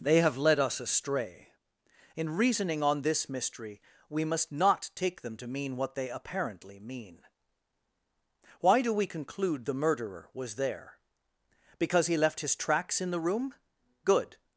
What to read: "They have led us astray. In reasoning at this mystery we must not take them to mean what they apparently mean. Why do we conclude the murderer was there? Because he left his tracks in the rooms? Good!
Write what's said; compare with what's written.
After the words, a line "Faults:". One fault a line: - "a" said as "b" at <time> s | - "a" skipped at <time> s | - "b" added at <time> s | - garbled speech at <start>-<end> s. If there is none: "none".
"They have led us astray. In reasoning on this mystery we must not take them to mean what they apparently mean. Why do we conclude the murderer was there? Because he left his tracks in the room? Good!
Faults:
- "at" said as "on" at 2.8 s
- "rooms" said as "room" at 13.2 s